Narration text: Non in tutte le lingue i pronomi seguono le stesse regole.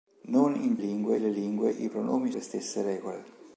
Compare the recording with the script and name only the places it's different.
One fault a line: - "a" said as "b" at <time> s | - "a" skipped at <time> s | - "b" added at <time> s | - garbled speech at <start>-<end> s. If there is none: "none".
- "tutte" said as "lingue" at 0.8 s
- "seguono" skipped at 2.3 s